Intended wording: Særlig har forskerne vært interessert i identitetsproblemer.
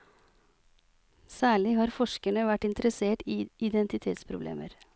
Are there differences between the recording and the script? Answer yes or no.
no